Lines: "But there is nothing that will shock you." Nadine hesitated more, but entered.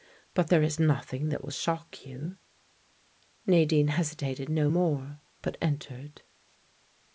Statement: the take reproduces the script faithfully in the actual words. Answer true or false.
false